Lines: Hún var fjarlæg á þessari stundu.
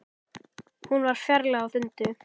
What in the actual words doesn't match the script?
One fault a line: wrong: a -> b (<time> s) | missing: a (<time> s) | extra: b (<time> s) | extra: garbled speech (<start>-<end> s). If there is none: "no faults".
missing: þessari (1.7 s)